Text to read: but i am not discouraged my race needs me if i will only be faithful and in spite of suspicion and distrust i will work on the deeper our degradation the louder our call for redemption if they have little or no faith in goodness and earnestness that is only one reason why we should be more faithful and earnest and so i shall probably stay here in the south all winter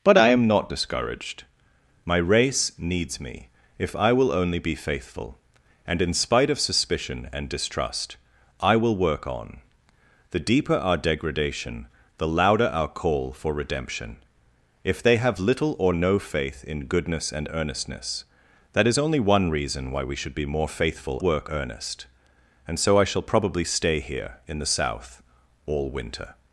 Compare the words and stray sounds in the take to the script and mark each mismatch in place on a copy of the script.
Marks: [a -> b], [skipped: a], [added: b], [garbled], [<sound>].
but i am not discouraged my race needs me if i will only be faithful and in spite of suspicion and distrust i will work on the deeper our degradation the louder our call for redemption if they have little or no faith in goodness and earnestness that is only one reason why we should be more faithful [and -> work] earnest and so i shall probably stay here in the south all winter